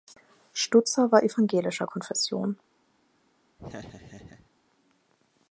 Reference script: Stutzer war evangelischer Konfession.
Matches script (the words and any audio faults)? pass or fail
fail